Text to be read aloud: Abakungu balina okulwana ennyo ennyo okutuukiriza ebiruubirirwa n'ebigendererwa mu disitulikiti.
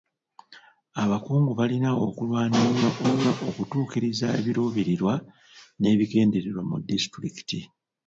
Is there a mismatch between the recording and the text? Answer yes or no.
no